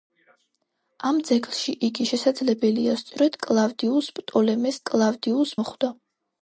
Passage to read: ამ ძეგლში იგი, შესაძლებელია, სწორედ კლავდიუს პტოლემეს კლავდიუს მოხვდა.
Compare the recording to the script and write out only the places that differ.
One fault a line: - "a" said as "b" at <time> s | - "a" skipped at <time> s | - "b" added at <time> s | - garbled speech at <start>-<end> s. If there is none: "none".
none